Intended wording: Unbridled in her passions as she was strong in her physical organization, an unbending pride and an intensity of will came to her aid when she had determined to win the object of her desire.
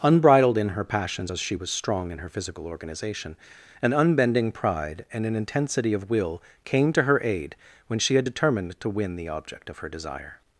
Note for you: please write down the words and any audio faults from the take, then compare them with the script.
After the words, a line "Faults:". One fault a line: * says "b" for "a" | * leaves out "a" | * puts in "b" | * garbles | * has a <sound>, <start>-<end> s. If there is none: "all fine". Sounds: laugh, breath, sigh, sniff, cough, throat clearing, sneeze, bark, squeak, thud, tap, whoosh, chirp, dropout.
Unbridled in her passions as she was strong in her physical organization, an unbending pride and an intensity of will came to her aid when she had determined to win the object of her desire.
Faults:
all fine